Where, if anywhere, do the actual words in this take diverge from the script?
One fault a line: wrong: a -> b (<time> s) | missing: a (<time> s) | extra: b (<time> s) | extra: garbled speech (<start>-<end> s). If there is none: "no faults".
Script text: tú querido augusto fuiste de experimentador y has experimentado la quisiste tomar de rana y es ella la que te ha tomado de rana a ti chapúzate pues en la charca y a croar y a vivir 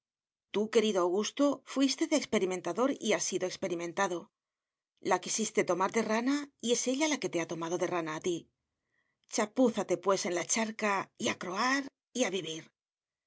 extra: sido (3.3 s)